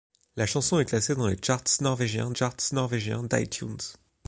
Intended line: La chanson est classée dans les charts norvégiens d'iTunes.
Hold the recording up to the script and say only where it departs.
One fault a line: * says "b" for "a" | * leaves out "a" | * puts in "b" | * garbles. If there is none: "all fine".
* puts in "charts norvégiens"